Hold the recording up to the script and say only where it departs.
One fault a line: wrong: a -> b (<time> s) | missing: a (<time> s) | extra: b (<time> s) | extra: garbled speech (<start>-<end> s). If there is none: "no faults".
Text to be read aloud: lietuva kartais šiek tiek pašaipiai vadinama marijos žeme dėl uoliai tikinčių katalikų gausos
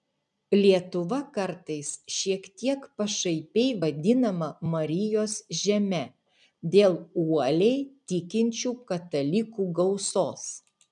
no faults